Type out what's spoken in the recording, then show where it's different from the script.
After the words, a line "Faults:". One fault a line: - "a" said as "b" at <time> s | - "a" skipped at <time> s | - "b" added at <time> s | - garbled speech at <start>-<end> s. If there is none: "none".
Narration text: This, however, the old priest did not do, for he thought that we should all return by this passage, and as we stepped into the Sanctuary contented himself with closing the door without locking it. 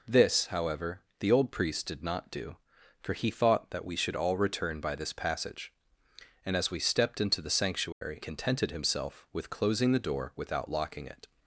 This, however, the old priest did not do, for he thought that we should all return by this passage, and as we stepped into the Sanctuary contented himself with closing the door without locking it.
Faults:
none